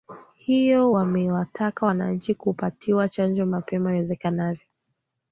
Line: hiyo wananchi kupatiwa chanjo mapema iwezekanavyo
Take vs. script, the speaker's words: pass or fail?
fail